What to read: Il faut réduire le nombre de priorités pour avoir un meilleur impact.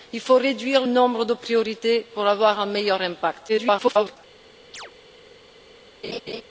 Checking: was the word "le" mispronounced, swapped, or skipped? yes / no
yes